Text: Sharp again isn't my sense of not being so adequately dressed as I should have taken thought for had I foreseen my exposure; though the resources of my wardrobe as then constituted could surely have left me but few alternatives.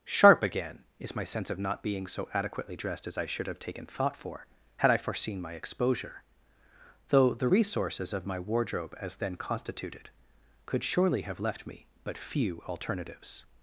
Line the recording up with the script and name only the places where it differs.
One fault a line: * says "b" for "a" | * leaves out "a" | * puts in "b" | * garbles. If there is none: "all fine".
* says "is" for "isn't"